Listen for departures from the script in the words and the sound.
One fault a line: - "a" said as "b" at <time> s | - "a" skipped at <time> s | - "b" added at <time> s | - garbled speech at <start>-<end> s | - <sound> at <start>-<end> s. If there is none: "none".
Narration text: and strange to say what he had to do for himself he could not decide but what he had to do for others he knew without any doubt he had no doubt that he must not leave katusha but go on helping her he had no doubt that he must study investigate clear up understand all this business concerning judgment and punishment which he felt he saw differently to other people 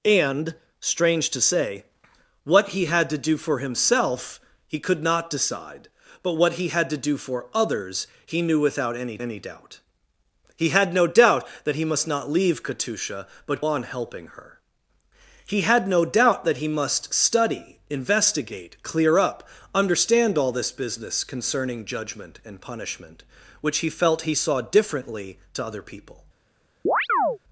- "any" added at 9.2 s
- "go" skipped at 13.6 s
- chirp at 26.9-27.4 s